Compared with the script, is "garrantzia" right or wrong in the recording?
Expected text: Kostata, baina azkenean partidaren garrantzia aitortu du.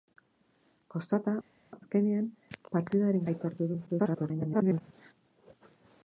wrong